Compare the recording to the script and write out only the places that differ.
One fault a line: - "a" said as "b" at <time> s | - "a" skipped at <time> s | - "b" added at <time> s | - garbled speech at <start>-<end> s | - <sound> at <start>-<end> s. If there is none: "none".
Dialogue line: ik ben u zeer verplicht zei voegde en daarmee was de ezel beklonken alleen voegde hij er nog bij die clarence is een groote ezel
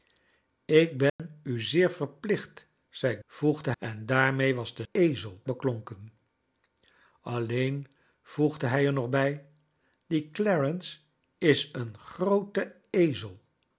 - dropout at 1.1-1.2 s